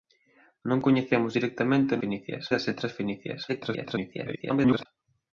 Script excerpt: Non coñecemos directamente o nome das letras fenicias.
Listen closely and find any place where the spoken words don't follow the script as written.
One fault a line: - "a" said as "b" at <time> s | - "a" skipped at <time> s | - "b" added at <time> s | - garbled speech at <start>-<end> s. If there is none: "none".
- "nome" said as "fenicias" at 2.0 s
- garbled speech at 3.5-4.9 s